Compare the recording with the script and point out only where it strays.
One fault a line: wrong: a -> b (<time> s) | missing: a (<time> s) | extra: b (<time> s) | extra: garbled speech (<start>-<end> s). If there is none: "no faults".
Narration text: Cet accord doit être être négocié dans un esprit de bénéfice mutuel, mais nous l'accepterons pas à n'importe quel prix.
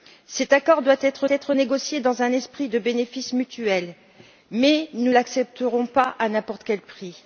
no faults